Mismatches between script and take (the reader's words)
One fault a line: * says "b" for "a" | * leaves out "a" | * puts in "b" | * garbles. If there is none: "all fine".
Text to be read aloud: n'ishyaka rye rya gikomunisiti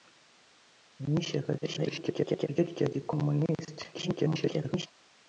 * garbles
* garbles